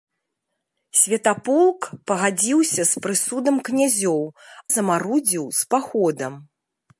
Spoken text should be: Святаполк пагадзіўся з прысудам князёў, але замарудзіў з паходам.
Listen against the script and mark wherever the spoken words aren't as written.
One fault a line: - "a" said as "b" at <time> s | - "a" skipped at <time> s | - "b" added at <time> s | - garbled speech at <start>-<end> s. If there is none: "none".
- "але" skipped at 4.2 s